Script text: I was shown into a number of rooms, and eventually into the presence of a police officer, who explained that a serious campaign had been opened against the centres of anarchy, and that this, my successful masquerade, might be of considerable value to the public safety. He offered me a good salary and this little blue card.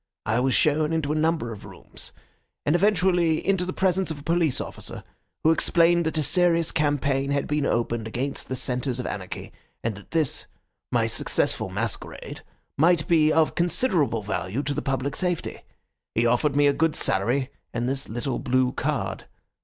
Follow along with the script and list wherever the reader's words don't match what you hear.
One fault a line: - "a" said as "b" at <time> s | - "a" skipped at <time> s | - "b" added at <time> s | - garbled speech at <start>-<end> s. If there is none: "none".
none